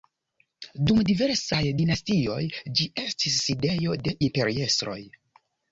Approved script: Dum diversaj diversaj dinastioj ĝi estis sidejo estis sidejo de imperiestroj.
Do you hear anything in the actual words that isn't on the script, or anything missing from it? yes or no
yes